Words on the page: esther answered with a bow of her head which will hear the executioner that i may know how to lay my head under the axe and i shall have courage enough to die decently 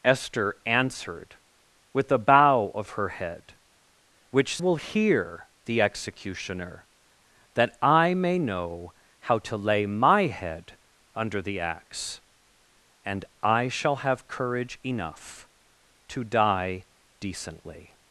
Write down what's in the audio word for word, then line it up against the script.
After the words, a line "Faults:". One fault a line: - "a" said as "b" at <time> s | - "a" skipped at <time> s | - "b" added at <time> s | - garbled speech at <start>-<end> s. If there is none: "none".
esther answered with a bow of her head which will hear the executioner that i may know how to lay my head under the axe and i shall have courage enough to die decently
Faults:
none